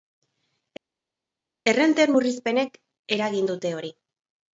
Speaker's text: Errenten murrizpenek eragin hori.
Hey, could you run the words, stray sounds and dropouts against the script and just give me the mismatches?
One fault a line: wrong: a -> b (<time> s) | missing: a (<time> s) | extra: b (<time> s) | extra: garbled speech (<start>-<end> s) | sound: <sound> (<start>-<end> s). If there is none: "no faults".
extra: dute (3.5 s)